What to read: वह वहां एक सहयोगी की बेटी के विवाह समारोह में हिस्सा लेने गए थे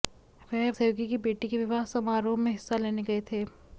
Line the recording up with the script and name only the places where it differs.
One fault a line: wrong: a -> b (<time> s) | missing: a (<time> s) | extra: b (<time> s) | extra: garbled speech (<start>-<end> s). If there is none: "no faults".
missing: वहां एक (0.7 s)